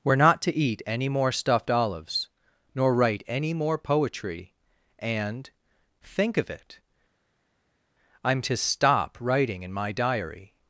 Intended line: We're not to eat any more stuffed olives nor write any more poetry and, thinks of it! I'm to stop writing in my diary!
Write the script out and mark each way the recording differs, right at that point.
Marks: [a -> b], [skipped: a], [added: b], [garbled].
We're not to eat any more stuffed olives nor write any more poetry and, [thinks -> think] of it! I'm to stop writing in my diary!